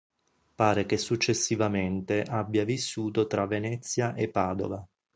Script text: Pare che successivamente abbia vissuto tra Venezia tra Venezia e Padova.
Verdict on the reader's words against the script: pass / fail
fail